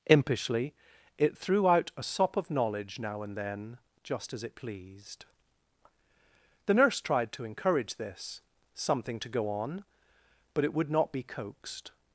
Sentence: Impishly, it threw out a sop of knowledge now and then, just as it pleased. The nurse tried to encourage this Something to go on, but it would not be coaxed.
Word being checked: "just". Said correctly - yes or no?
yes